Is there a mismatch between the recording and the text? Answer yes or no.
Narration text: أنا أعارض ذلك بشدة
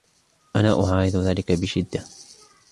no